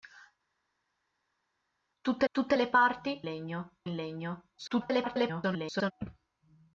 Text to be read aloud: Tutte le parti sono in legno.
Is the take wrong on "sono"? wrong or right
wrong